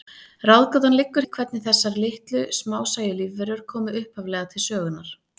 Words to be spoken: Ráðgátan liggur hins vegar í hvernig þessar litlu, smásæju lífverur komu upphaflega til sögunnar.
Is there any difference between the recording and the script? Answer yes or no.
yes